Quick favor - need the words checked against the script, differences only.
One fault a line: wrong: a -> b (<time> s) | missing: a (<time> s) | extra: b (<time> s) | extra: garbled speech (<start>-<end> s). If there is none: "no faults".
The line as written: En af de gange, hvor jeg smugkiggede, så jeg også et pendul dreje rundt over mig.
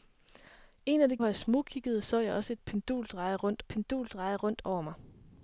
missing: gange (1.2 s)
extra: pendul dreje rundt (3.6 s)